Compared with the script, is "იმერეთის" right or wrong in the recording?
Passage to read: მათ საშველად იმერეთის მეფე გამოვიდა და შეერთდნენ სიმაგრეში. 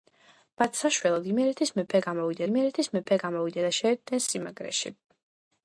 right